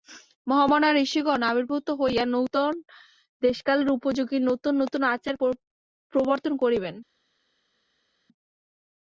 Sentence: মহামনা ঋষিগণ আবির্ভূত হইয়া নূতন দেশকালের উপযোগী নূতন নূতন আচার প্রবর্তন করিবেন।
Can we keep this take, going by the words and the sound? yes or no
yes